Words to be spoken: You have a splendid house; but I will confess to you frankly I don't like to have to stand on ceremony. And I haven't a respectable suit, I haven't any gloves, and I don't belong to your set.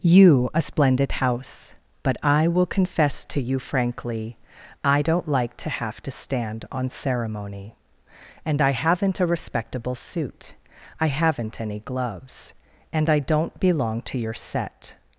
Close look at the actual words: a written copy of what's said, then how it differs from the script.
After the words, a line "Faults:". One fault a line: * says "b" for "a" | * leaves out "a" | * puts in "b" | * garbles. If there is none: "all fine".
You a splendid house; but I will confess to you frankly I don't like to have to stand on ceremony. And I haven't a respectable suit, I haven't any gloves, and I don't belong to your set.
Faults:
* leaves out "have"